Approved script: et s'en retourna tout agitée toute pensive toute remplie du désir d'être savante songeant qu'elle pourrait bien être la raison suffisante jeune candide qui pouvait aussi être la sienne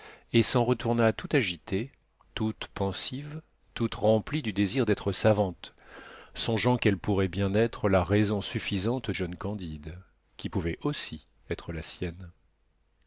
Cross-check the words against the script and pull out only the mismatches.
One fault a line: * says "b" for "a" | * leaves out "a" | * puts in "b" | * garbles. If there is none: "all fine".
all fine